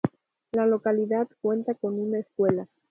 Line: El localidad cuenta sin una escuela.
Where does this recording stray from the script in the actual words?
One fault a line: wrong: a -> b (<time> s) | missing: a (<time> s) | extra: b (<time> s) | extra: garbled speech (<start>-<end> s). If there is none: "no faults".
wrong: El -> La (0.5 s)
wrong: sin -> con (1.8 s)